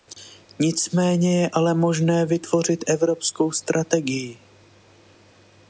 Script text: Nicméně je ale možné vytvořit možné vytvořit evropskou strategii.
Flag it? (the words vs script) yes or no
yes